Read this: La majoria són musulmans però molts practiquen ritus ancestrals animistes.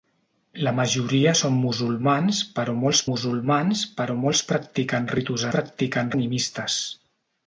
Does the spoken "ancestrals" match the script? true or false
false